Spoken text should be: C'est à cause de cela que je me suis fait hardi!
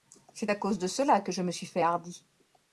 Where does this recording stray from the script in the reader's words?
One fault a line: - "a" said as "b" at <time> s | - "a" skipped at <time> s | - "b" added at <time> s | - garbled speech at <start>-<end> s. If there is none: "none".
none